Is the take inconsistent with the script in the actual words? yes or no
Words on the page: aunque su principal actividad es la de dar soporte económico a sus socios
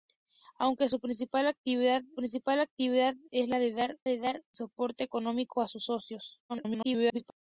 yes